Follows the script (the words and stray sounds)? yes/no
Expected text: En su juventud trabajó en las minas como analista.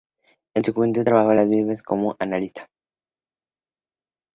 yes